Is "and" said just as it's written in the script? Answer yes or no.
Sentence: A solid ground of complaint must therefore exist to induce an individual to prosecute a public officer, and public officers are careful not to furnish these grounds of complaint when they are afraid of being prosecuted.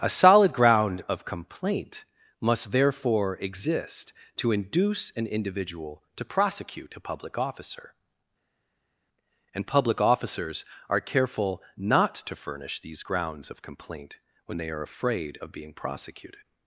yes